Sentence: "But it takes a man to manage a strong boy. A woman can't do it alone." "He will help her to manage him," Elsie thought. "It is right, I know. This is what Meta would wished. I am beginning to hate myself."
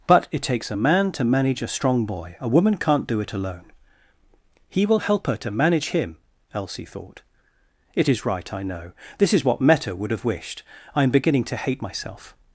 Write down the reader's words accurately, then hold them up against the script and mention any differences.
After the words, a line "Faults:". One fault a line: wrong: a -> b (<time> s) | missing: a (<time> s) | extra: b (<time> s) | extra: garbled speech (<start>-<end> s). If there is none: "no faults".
"But it takes a man to manage a strong boy. A woman can't do it alone." "He will help her to manage him," Elsie thought. "It is right, I know. This is what Meta would have wished. I am beginning to hate myself."
Faults:
extra: have (10.1 s)